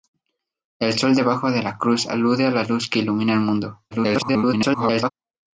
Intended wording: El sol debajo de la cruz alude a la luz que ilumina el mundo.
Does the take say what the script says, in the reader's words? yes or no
no